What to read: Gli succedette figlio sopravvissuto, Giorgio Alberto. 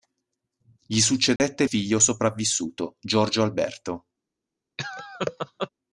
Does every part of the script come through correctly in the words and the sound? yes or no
no